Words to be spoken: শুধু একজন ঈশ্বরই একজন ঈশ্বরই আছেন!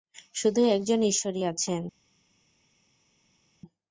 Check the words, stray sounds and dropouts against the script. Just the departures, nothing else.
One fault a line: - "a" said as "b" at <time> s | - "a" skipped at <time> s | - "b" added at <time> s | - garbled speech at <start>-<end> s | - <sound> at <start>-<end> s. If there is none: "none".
- "একজন ঈশ্বরই" skipped at 1.4 s